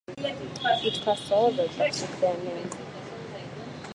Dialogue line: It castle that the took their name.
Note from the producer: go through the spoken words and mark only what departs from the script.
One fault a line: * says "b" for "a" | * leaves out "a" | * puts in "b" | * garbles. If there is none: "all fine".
all fine